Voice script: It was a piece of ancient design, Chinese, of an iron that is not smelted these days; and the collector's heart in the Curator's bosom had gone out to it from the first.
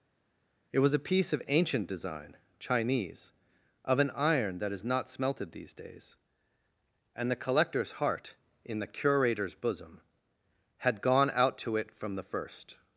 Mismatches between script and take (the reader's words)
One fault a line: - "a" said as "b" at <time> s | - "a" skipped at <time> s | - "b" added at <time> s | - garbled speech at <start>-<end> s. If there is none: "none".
none